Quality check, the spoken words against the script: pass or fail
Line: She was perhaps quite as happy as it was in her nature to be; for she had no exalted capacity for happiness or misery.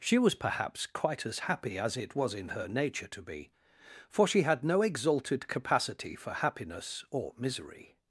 pass